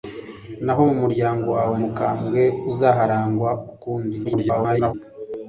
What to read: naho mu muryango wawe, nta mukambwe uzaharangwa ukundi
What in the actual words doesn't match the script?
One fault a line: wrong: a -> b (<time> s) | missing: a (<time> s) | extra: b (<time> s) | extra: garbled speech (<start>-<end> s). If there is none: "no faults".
missing: nta (1.7 s)
extra: garbled speech (4.2-4.9 s)